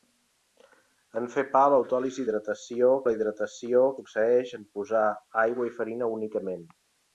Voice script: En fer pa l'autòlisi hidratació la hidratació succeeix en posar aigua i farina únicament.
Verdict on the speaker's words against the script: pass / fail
pass